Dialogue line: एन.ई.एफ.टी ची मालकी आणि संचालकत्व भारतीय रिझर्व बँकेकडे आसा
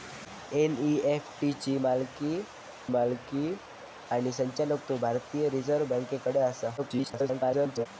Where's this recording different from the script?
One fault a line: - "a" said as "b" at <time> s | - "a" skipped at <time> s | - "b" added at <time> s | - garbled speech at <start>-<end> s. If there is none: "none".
- "मालकी" added at 2.9 s
- garbled speech at 6.8-7.9 s